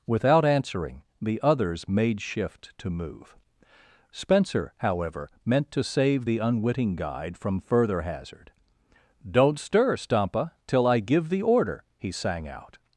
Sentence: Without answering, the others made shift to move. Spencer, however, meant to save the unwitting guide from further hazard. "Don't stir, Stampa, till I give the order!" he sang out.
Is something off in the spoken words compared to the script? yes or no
no